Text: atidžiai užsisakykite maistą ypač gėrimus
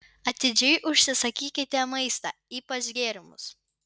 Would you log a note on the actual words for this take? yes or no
no